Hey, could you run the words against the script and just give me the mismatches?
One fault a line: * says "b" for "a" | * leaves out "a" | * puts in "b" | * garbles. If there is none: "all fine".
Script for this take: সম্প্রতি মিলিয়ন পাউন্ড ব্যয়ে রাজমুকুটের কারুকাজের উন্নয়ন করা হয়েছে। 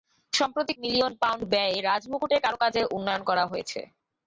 all fine